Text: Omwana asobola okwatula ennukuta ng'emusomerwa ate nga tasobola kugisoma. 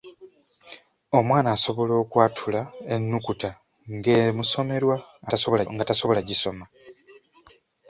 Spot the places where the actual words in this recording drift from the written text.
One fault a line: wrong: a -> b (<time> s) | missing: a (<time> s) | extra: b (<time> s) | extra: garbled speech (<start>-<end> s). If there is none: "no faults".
wrong: ate -> tasobola (5.3 s)